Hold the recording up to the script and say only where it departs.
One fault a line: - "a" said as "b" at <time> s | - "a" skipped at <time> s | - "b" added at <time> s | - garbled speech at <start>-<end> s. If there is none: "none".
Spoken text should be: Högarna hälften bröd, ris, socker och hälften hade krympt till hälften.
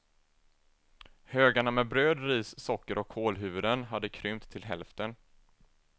- "hälften" said as "med" at 1.7 s
- "hälften" said as "kålhuvuden" at 3.1 s